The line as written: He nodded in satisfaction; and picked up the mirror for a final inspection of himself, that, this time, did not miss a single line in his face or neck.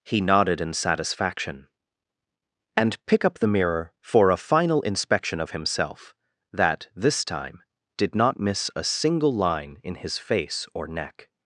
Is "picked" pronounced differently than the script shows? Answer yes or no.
yes